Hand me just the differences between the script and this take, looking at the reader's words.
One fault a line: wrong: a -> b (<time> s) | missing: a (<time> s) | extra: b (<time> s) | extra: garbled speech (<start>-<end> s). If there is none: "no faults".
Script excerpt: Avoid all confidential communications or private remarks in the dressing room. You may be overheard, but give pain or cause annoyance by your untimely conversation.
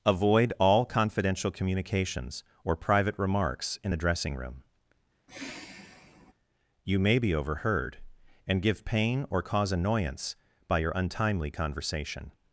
wrong: but -> and (8.5 s)